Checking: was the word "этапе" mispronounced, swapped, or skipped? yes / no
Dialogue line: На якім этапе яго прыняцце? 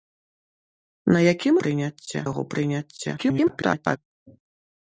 yes